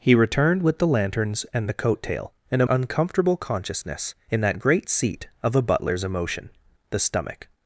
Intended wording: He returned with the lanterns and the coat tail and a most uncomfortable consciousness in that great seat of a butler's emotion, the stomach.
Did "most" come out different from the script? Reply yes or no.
yes